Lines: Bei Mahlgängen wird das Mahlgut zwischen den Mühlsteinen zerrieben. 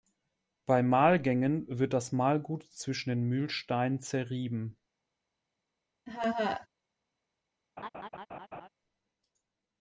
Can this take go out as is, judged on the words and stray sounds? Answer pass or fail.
fail